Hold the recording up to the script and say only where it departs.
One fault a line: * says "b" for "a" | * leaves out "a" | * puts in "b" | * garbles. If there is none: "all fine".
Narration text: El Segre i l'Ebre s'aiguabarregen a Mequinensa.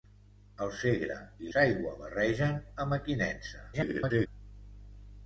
* leaves out "l'Ebre"
* garbles